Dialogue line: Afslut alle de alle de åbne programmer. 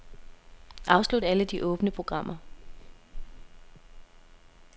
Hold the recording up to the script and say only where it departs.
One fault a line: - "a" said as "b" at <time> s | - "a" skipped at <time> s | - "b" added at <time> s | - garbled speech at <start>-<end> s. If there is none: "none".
- "alle de" skipped at 1.6 s